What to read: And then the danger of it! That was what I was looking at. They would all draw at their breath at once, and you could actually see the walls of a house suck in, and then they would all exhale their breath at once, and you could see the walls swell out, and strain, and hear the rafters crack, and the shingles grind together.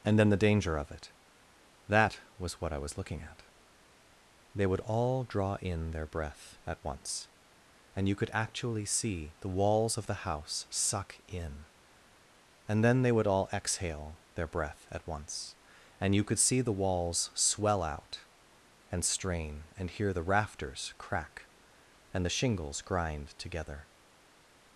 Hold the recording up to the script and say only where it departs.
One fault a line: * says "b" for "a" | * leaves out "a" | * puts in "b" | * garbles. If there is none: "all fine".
* says "in" for "at"
* says "the" for "a"